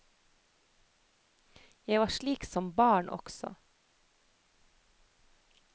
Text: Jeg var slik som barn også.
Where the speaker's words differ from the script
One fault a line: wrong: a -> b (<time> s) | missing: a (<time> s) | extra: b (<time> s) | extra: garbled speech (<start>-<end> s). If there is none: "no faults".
no faults